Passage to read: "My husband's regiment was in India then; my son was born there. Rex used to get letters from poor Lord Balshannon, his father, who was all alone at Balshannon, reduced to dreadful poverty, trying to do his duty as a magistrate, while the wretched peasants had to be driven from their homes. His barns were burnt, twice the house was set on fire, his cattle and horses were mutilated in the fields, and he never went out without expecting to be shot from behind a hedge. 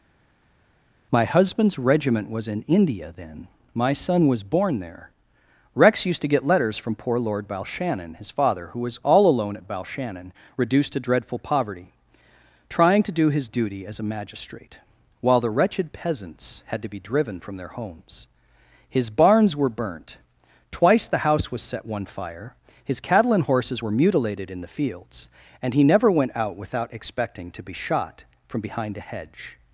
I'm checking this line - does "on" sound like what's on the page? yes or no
no